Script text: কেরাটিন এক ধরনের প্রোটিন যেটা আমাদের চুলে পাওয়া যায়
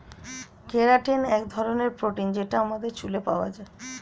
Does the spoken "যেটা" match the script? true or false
true